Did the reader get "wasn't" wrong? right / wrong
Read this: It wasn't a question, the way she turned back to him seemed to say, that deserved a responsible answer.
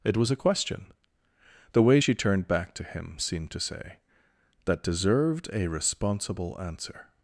wrong